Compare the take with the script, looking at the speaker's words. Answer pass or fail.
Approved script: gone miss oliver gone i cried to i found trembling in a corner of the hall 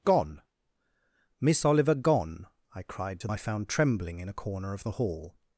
pass